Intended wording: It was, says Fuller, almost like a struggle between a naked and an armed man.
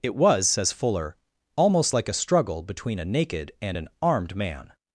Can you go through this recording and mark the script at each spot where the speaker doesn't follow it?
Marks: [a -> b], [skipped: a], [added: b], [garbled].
It was, says Fuller, almost like a struggle between a naked and an armed man.